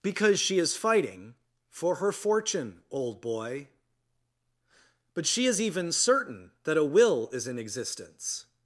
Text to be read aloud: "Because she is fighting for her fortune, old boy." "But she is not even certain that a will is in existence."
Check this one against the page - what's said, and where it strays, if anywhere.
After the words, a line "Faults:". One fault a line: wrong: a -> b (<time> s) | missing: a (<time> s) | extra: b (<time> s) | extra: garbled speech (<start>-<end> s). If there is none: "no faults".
"Because she is fighting for her fortune, old boy." "But she is even certain that a will is in existence."
Faults:
missing: not (5.6 s)